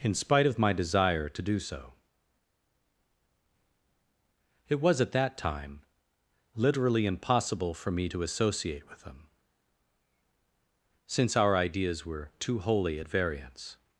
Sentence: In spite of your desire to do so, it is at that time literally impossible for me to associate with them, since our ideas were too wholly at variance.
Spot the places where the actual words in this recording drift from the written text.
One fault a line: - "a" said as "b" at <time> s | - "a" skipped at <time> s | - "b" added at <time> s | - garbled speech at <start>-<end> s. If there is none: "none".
- "your" said as "my" at 0.6 s
- "is" said as "was" at 4.8 s